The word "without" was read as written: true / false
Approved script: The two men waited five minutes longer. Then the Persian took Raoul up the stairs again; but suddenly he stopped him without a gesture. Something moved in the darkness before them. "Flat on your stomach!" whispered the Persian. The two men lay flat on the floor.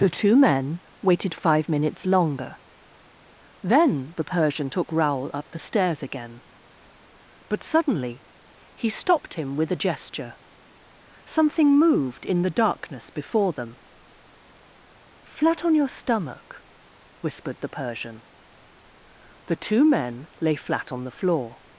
false